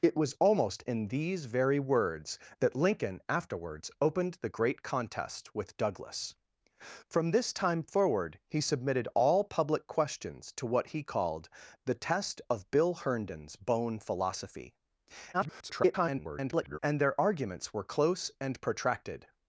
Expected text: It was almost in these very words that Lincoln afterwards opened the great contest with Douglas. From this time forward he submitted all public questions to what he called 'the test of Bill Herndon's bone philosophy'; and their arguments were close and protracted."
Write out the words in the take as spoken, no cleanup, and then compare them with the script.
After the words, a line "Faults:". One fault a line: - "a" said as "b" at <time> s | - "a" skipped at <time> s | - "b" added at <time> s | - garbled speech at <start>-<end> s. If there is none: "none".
It was almost in these very words that Lincoln afterwards opened the great contest with Douglas. From this time forward he submitted all public questions to what he called 'the test of Bill Herndon's bone philosophy'; [garbled] and their arguments were close and protracted."
Faults:
- garbled speech at 15.3-16.8 s